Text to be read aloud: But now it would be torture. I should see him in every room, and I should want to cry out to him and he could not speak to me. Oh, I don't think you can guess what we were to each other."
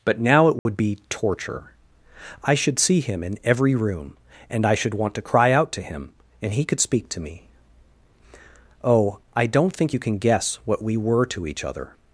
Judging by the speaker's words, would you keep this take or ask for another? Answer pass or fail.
fail